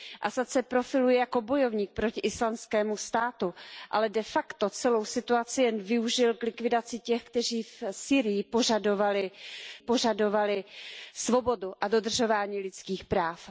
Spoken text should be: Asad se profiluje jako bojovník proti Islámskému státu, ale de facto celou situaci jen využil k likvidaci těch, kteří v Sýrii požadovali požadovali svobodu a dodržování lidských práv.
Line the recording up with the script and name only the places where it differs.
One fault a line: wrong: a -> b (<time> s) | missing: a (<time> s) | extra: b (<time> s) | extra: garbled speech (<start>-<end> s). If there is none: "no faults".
no faults